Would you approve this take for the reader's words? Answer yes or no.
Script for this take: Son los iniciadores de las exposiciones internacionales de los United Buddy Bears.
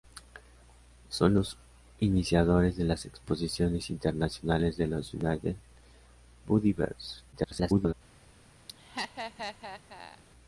no